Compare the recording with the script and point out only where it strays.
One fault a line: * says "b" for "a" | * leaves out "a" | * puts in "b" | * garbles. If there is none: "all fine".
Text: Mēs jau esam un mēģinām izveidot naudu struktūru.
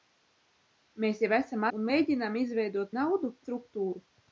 all fine